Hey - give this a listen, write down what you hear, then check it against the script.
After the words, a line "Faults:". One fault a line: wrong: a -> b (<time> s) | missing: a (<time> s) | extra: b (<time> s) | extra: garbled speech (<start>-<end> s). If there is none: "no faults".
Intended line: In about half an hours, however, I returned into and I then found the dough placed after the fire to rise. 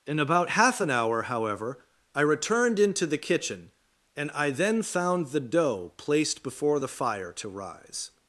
In about half an hour, however, I returned into the kitchen, and I then found the dough placed before the fire to rise.
Faults:
wrong: hours -> hour (0.9 s)
extra: the kitchen (3.0 s)
wrong: after -> before (6.4 s)